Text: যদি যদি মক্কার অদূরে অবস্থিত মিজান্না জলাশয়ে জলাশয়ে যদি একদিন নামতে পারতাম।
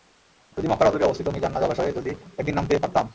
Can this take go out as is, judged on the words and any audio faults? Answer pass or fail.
fail